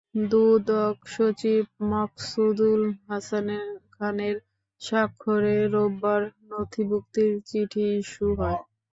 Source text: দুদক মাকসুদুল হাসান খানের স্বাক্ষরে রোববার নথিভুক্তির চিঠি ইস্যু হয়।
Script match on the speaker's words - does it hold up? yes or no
no